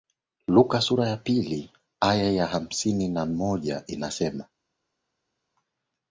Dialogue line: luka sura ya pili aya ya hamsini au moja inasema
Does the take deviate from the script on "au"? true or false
true